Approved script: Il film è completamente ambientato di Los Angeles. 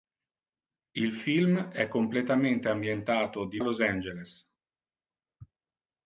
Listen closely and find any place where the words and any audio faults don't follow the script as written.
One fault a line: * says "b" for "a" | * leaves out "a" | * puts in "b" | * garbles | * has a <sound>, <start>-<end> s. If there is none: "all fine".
all fine